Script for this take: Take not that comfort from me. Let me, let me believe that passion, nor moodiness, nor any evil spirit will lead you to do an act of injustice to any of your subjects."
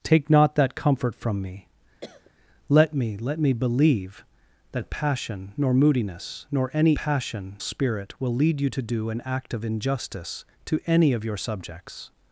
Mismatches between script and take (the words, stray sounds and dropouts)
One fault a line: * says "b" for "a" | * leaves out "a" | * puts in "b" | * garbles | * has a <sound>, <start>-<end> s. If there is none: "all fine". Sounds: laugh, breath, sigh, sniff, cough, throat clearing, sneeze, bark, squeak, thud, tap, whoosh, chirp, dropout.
* has a cough, 2.0-2.3 s
* says "passion" for "evil"